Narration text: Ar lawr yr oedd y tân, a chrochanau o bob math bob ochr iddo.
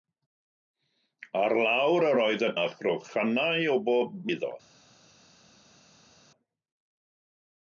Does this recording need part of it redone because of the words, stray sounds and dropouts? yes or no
yes